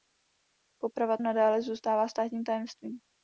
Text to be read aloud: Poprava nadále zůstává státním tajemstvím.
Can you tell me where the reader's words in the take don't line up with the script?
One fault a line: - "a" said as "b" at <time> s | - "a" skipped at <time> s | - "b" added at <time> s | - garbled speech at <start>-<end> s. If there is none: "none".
none